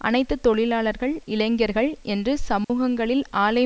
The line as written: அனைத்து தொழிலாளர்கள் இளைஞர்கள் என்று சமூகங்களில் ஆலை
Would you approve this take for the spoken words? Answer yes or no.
yes